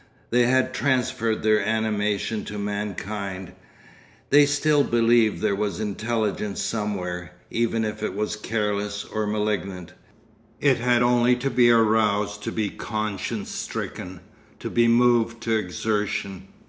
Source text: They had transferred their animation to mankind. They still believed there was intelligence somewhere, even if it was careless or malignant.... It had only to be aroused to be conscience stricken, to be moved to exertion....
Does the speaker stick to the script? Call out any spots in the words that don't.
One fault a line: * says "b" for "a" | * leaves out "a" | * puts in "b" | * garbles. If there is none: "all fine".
all fine